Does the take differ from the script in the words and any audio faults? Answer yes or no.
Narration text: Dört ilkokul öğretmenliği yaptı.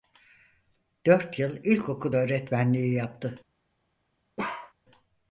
yes